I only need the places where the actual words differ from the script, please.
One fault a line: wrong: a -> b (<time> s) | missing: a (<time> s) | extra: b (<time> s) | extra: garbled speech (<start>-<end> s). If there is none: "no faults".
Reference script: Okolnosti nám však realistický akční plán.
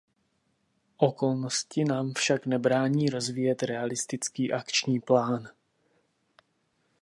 extra: nebrání rozvíjet (2.5 s)